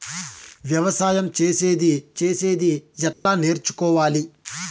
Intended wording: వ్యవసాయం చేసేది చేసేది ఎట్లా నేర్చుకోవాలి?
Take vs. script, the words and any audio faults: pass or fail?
fail